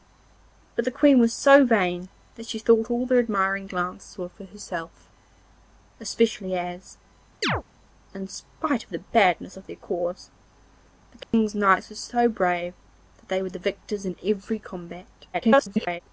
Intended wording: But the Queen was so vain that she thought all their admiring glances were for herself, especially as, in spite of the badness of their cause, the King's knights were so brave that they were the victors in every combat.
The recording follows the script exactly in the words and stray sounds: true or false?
false